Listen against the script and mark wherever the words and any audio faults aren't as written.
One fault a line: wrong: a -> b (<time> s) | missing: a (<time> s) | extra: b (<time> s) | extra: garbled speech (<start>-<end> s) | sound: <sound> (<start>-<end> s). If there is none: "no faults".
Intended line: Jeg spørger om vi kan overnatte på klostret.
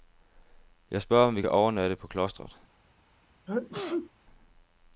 sound: sneeze (3.5-4.1 s)